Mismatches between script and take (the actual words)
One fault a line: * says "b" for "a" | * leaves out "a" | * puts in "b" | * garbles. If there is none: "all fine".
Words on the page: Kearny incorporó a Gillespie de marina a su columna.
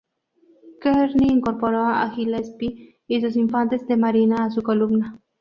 * puts in "y sus infantes"